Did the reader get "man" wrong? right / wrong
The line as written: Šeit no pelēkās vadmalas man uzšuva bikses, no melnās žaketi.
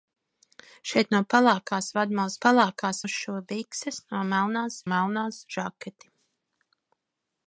wrong